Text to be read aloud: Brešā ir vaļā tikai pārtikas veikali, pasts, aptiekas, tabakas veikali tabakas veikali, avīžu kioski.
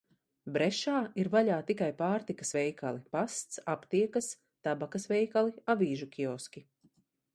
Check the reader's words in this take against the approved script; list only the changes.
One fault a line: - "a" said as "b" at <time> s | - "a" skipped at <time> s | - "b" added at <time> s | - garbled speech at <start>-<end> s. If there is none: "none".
- "tabakas veikali" skipped at 5.6 s